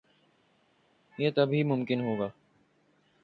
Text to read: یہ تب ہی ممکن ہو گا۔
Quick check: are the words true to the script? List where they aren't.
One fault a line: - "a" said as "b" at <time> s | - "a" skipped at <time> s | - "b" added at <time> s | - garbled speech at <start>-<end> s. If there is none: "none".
none